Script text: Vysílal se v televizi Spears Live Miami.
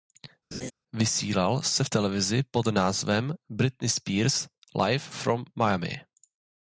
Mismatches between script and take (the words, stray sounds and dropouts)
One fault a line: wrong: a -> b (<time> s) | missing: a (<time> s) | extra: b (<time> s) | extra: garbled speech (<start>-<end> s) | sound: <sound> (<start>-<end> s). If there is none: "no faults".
sound: laugh (0.5-0.7 s)
extra: pod názvem Britney (2.5 s)
extra: From (5.1 s)